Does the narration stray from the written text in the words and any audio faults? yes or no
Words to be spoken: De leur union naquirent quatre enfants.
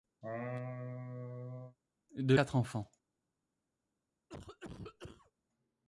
yes